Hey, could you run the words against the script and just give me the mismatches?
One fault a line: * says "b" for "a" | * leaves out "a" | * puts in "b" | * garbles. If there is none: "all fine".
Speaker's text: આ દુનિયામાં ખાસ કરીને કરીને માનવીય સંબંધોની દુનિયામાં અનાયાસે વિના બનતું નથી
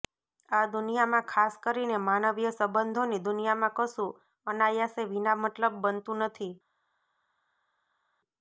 * leaves out "કરીને"
* puts in "કશું"
* puts in "મતલબ"